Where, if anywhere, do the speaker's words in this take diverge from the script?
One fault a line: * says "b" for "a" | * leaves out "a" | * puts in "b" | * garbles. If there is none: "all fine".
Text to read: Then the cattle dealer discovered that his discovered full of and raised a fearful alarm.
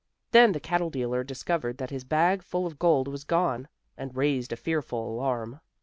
* says "bag" for "discovered"
* puts in "gold was gone"